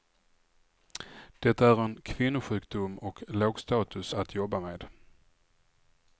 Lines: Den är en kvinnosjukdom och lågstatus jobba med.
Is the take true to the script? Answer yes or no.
no